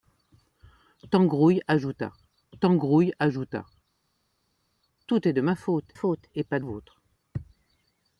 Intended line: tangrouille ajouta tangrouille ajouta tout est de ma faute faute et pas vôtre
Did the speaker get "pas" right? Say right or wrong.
right